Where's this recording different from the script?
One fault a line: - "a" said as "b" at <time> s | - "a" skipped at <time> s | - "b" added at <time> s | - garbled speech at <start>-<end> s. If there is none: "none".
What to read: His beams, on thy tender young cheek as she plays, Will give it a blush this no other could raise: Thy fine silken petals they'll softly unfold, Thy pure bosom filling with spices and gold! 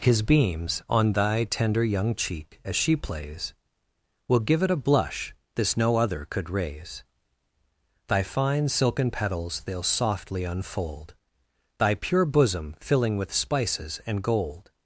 none